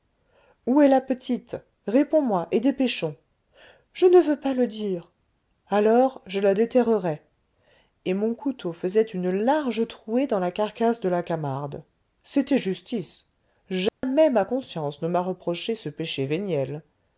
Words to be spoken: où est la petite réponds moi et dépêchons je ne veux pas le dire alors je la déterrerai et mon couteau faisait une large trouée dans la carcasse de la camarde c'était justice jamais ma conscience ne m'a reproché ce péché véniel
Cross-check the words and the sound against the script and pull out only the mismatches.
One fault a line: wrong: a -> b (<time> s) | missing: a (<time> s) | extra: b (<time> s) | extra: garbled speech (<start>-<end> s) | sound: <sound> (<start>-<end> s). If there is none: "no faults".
sound: dropout (13.9-14.0 s)